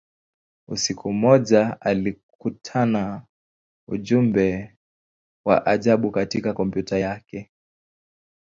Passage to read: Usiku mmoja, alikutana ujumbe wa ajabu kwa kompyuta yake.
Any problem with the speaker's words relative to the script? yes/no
yes